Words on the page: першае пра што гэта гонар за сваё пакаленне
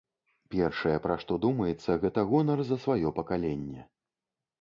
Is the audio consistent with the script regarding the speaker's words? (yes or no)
no